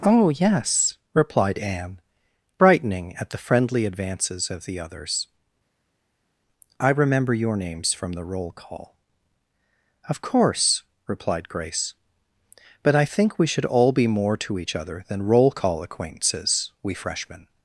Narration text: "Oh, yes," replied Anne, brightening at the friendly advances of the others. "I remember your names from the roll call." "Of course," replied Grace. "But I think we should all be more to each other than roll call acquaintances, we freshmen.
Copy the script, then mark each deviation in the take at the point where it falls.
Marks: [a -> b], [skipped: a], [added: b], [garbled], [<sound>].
"Oh, yes," replied Anne, brightening at the friendly advances of the others. "I remember your names from the roll call." "Of course," replied Grace. "But I think we should all be more to each other than roll call acquaintances, we freshmen.